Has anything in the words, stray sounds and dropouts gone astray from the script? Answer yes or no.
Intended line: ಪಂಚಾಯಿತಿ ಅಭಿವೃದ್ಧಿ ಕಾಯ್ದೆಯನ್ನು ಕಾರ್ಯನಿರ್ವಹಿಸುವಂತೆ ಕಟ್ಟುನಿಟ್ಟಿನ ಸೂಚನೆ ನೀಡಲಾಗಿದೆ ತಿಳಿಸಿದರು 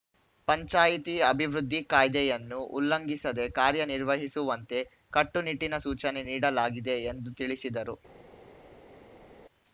yes